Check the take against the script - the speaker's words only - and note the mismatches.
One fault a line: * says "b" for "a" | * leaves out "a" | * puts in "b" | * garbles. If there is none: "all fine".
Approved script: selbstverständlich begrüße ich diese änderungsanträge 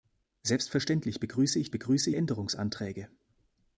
* says "begrüße" for "diese"